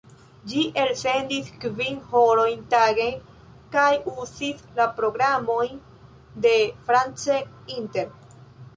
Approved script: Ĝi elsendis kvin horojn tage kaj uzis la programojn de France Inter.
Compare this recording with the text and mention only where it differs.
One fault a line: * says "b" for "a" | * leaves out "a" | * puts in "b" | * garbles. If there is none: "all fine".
all fine